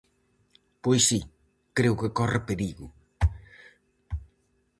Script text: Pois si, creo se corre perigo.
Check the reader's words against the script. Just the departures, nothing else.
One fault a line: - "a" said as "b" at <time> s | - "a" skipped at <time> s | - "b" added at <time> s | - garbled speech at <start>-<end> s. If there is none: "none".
- "se" said as "que" at 2.0 s